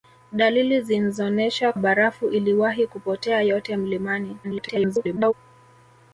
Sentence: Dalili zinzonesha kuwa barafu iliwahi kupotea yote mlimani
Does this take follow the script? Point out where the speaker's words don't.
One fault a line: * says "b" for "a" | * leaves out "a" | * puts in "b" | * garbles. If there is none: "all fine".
* leaves out "kuwa"
* garbles